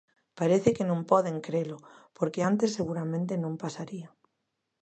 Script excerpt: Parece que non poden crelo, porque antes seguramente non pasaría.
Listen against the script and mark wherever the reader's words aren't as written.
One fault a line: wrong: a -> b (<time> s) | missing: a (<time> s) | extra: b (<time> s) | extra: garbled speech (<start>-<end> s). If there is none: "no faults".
no faults